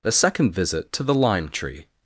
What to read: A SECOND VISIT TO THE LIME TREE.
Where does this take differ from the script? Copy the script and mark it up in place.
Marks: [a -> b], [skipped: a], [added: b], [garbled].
A SECOND VISIT TO THE LIME TREE.